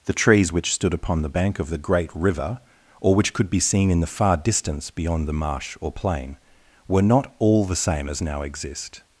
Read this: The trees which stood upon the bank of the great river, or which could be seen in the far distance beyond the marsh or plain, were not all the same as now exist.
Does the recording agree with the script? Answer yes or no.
yes